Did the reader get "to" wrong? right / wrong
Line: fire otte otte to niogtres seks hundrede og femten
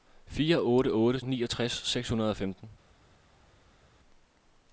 wrong